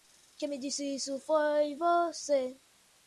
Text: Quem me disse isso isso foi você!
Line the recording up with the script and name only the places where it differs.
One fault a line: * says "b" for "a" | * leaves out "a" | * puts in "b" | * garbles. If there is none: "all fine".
* leaves out "isso"